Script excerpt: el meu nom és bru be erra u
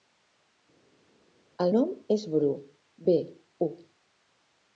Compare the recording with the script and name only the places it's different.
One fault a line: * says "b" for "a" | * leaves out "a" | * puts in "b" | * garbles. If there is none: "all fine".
* leaves out "meu"
* leaves out "erra"